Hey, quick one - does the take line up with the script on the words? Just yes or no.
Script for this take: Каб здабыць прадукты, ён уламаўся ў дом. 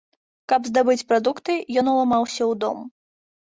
yes